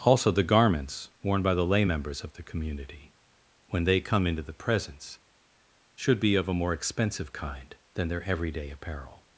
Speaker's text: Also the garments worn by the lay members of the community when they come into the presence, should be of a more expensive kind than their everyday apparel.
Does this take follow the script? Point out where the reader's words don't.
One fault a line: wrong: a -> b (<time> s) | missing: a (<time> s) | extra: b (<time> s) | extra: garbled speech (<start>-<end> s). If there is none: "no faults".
no faults